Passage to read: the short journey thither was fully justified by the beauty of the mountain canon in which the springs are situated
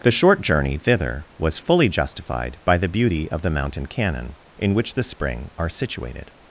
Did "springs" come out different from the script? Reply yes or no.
yes